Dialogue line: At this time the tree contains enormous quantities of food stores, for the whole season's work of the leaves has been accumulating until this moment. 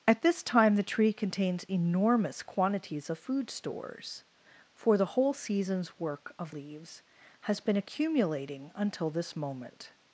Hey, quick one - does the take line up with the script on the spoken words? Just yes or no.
no